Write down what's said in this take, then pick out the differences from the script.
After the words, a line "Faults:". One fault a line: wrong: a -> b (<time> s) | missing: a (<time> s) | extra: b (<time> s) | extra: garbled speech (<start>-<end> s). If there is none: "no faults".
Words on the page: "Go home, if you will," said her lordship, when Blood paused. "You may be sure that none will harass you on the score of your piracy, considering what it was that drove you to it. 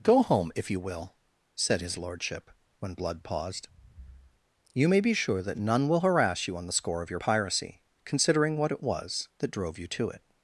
"Go home, if you will," said his lordship, when Blood paused. "You may be sure that none will harass you on the score of your piracy, considering what it was that drove you to it.
Faults:
wrong: her -> his (1.8 s)